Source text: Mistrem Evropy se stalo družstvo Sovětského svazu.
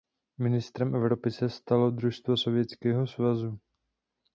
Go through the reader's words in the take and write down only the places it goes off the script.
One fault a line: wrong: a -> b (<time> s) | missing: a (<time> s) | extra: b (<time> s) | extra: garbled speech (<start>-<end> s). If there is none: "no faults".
no faults